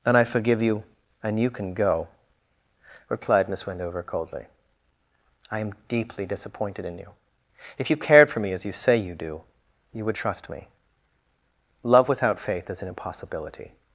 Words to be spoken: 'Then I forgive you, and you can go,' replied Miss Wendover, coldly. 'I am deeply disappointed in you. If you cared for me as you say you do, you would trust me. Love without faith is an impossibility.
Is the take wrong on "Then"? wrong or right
wrong